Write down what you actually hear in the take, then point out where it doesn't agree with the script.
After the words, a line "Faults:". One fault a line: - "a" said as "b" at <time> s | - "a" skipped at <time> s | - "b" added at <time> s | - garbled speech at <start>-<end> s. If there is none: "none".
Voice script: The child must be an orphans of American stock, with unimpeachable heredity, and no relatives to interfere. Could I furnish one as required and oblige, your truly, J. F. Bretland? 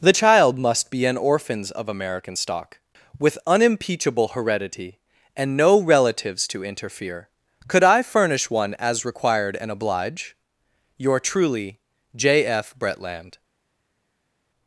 The child must be an orphans of American stock, with unimpeachable heredity, and no relatives to interfere. Could I furnish one as required and oblige, your truly, J. F. Bretland?
Faults:
none